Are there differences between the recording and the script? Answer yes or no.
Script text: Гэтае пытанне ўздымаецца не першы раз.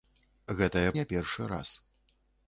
yes